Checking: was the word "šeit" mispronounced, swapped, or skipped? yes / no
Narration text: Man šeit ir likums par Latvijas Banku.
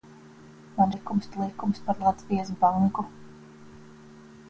yes